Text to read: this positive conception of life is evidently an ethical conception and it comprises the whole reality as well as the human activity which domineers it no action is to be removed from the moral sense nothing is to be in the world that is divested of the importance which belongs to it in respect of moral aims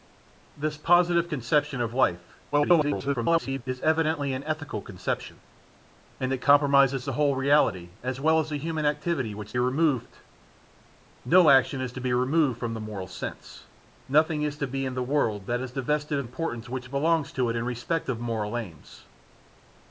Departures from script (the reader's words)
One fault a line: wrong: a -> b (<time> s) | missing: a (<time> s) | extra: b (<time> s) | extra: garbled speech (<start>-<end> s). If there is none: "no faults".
extra: garbled speech (2.5-3.6 s)
wrong: domineers -> removed (9.6 s)
missing: the (16.3 s)